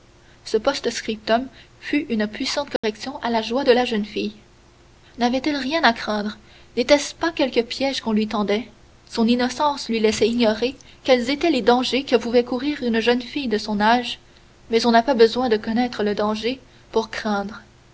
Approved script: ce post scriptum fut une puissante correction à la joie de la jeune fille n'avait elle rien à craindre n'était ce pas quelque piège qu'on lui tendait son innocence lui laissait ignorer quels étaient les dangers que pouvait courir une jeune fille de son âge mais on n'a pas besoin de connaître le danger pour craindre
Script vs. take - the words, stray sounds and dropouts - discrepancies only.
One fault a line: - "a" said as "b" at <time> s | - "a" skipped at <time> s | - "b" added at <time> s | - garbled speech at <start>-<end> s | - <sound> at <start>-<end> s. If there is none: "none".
- dropout at 2.8-2.8 s